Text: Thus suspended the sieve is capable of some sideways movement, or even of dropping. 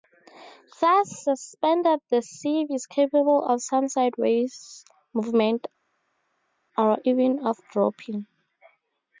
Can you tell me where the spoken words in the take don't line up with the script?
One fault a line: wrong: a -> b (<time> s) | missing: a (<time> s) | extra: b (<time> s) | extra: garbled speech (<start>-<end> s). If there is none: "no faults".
no faults